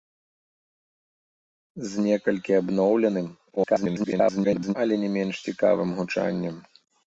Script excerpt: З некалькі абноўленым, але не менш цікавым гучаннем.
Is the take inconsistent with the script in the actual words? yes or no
yes